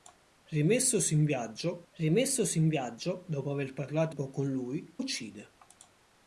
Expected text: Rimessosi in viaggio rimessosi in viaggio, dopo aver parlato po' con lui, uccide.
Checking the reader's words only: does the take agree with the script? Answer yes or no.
yes